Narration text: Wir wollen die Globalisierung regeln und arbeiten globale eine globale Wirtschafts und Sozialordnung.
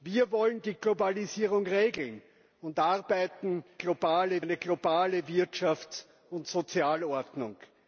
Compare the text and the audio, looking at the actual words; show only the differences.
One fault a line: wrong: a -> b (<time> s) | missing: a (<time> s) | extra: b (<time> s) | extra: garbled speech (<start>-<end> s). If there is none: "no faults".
no faults